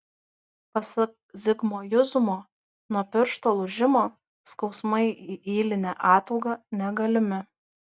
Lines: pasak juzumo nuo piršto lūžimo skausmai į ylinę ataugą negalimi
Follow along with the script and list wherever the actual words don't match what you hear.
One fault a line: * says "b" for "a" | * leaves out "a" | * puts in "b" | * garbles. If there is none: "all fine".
* puts in "zigmo"